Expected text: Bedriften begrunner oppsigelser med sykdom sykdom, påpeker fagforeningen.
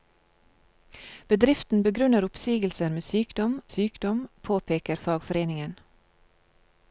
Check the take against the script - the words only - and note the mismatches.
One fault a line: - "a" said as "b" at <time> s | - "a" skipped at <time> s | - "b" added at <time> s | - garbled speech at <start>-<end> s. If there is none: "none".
none